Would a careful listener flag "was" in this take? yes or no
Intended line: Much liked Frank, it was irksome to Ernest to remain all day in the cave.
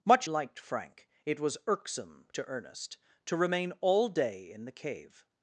no